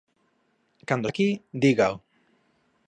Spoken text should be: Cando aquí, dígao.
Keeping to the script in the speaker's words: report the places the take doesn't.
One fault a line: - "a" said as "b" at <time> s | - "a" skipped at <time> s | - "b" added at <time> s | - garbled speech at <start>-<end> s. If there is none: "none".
none